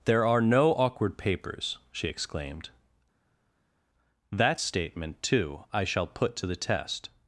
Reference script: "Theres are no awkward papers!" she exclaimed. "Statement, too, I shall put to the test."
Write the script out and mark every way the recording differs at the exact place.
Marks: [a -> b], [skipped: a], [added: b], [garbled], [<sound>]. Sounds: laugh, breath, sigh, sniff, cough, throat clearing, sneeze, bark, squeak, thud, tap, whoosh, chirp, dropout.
["Theres -> There] are no awkward papers!" she exclaimed. [added: That] "Statement, too, I shall put to the test."